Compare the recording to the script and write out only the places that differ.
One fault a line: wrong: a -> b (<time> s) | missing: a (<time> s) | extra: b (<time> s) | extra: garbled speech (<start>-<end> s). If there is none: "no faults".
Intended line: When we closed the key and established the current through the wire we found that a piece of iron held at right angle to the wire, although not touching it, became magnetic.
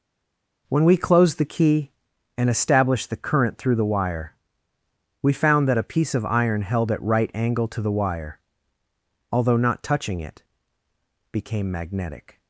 no faults